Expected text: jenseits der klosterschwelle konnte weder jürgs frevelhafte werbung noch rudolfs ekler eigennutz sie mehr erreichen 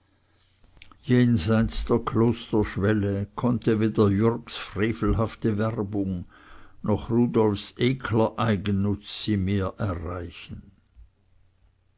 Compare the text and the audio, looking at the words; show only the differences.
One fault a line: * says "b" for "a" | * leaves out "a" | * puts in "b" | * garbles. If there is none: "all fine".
all fine